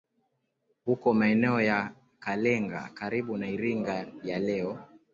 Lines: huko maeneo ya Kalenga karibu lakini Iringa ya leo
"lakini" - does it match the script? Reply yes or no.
no